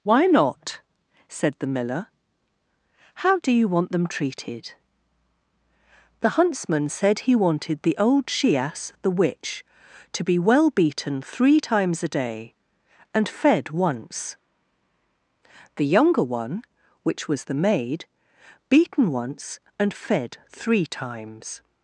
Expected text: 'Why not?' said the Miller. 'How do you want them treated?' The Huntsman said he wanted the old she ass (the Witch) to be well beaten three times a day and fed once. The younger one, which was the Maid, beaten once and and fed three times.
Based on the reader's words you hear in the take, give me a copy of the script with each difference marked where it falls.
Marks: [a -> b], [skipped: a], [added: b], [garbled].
'Why not?' said the Miller. 'How do you want them treated?' The Huntsman said he wanted the old she ass (the Witch) to be well beaten three times a day and fed once. The younger one, which was the Maid, beaten once and [skipped: and] fed three times.